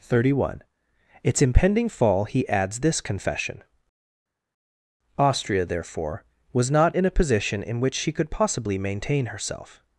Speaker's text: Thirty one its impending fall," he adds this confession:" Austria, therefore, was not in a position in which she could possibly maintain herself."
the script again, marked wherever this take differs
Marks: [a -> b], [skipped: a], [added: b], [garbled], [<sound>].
Thirty one its impending fall," he adds this confession:" Austria, therefore, was not in a position in which she could possibly maintain herself."